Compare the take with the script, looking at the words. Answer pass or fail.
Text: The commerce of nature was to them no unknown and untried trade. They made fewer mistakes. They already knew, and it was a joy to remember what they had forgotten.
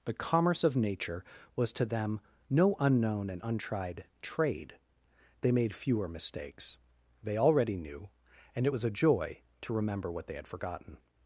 pass